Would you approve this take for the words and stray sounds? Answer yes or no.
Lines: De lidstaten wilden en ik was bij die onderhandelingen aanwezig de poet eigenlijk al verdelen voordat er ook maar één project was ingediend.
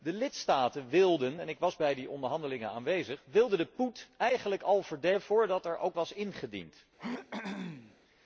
no